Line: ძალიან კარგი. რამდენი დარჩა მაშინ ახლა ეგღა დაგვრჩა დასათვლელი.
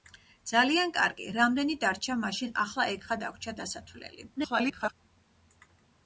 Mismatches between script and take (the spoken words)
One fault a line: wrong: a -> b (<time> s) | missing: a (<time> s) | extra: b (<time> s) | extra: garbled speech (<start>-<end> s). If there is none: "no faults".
extra: garbled speech (4.4-4.9 s)